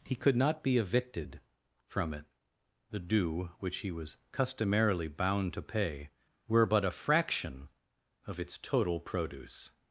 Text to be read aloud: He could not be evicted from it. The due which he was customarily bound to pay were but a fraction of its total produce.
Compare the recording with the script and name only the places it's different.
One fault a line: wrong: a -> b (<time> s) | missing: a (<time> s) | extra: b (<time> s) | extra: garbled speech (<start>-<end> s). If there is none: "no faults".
no faults